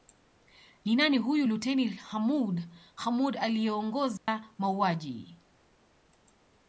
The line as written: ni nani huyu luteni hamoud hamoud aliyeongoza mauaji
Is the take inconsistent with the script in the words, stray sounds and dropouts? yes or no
yes